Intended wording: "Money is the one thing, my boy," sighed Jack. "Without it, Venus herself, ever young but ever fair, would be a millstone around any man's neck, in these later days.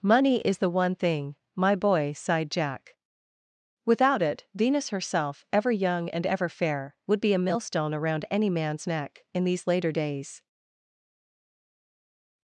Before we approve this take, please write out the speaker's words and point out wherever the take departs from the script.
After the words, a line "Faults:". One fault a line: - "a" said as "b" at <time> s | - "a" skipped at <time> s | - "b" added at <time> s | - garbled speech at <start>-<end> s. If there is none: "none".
"Money is the one thing, my boy," sighed Jack. "Without it, Venus herself, ever young and ever fair, would be a millstone around any man's neck, in these later days.
Faults:
- "but" said as "and" at 6.1 s